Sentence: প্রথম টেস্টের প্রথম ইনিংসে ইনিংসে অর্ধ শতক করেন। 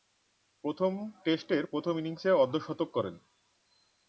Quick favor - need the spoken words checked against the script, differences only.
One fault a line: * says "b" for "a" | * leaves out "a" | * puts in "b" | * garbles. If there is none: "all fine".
* leaves out "ইনিংসে"